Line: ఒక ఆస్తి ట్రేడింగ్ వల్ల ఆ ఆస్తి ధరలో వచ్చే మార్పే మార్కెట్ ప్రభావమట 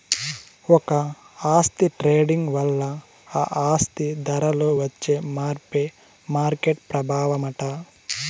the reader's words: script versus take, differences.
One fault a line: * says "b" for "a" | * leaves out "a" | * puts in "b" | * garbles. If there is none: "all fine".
all fine